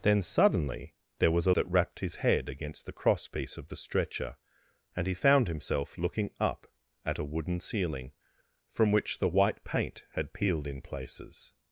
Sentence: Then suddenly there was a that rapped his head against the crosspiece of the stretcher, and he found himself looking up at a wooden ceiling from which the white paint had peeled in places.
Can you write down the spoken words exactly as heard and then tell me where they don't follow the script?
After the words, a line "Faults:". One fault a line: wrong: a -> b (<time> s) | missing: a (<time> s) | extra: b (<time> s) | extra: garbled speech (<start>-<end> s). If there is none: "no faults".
Then suddenly there was a that rapped his head against the crosspiece of the stretcher, and he found himself looking up at a wooden ceiling from which the white paint had peeled in places.
Faults:
no faults